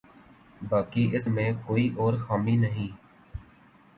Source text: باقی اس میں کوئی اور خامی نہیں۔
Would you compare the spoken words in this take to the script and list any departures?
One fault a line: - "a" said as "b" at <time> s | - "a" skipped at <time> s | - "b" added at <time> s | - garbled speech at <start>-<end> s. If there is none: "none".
none